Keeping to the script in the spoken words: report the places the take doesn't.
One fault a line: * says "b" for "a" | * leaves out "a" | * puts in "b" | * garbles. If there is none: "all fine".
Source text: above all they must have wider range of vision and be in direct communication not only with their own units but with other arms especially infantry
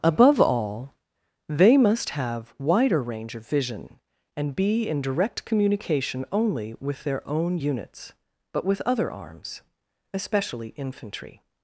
* leaves out "not"